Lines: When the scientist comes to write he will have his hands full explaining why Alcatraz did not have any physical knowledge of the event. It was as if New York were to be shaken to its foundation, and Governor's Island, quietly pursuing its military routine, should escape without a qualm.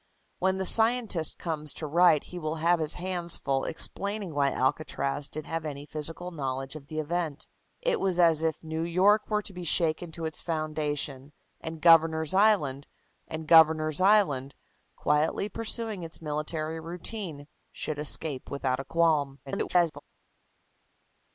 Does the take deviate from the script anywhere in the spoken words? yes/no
yes